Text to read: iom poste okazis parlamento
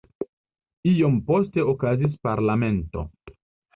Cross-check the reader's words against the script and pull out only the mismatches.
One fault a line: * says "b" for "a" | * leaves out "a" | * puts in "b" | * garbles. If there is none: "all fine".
all fine